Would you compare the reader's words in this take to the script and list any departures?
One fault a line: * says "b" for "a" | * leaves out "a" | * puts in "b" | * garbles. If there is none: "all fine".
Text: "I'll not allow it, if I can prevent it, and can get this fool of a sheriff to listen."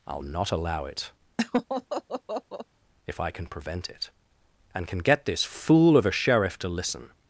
all fine